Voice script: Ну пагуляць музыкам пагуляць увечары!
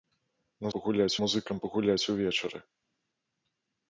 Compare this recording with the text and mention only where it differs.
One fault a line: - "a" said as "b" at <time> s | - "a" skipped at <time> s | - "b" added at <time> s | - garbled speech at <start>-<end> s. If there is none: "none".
none